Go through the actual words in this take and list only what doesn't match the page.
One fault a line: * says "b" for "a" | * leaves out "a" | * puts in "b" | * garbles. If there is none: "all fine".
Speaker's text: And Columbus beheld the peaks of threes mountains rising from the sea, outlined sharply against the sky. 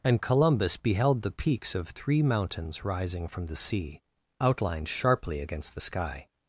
* says "three" for "threes"